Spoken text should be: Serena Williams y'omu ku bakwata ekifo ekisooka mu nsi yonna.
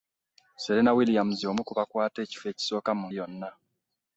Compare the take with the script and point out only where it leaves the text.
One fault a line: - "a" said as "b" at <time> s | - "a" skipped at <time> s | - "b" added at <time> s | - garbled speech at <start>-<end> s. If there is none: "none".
- "nsi" skipped at 3.1 s